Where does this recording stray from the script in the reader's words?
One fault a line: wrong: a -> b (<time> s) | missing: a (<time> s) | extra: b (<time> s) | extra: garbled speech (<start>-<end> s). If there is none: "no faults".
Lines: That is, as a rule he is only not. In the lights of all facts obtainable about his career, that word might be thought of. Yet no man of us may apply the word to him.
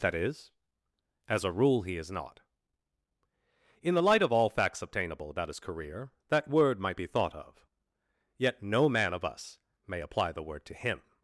missing: only (2.1 s)
wrong: lights -> light (4.0 s)